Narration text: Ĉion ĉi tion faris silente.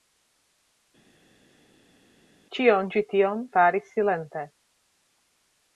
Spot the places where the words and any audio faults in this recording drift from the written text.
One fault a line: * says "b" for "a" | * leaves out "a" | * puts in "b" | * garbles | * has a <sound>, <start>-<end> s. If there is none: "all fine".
all fine